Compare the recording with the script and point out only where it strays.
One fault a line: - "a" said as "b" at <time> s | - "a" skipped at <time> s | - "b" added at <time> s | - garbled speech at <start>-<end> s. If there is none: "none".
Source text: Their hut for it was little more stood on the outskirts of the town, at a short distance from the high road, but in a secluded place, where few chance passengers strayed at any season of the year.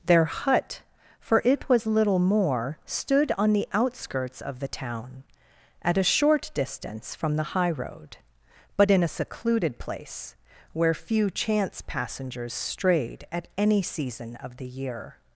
none